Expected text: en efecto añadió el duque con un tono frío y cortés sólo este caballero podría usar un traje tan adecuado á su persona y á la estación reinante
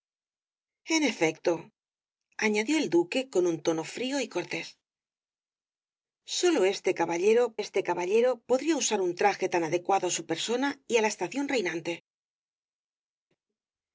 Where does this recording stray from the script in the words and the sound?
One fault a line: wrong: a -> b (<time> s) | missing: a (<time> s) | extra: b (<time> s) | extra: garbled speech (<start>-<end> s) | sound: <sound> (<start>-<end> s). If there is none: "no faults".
extra: este caballero (7.6 s)